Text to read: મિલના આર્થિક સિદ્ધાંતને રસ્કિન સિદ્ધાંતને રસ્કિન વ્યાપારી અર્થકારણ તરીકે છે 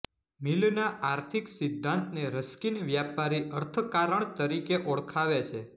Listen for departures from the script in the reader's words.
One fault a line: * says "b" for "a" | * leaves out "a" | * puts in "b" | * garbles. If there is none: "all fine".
* leaves out "સિદ્ધાંતને રસ્કિન"
* puts in "ઓળખાવે"